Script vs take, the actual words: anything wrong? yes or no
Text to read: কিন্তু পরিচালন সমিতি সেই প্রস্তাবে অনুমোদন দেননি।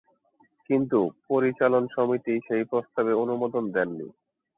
no